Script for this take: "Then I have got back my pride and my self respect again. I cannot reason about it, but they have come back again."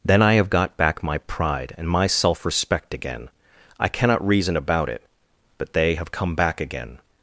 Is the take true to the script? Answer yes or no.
yes